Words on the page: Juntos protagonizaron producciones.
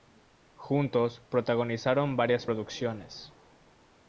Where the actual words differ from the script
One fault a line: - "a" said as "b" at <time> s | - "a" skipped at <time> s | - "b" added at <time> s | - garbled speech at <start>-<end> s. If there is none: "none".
- "varias" added at 2.1 s